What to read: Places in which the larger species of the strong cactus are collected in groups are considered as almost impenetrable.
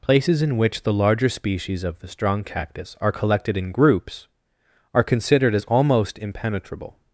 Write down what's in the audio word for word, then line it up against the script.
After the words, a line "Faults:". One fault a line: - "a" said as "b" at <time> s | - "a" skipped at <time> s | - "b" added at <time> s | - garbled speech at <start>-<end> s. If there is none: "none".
Places in which the larger species of the strong cactus are collected in groups are considered as almost impenetrable.
Faults:
none